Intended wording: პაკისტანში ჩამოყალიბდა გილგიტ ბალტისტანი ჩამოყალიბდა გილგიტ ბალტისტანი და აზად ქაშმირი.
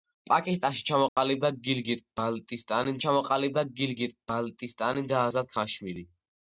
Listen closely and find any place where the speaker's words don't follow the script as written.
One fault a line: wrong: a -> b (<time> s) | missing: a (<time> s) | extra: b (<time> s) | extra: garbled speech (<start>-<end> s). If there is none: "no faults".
no faults